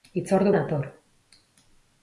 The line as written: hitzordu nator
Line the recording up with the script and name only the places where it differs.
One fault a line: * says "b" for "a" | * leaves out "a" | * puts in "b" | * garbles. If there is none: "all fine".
all fine